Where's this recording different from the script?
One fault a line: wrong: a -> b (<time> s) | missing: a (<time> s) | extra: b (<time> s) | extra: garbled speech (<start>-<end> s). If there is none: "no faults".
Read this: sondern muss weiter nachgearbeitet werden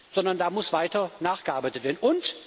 extra: da (0.4 s)